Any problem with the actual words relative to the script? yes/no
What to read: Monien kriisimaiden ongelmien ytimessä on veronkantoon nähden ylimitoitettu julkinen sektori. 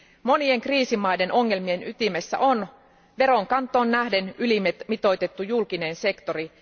no